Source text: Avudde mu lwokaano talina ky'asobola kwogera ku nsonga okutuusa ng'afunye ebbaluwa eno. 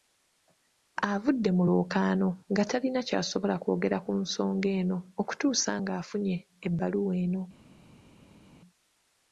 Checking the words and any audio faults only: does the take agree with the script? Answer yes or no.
no